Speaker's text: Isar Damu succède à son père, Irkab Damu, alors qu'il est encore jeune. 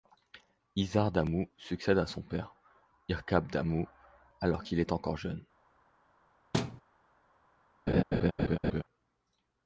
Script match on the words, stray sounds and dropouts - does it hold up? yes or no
no